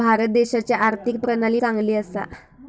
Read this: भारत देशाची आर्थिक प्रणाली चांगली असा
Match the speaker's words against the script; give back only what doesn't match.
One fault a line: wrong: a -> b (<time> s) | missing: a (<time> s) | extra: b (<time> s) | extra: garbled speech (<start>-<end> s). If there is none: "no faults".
no faults